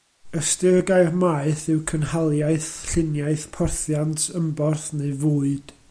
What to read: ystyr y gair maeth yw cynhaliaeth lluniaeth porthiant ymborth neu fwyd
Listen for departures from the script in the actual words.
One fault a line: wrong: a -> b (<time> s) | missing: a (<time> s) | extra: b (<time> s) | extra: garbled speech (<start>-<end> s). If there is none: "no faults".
no faults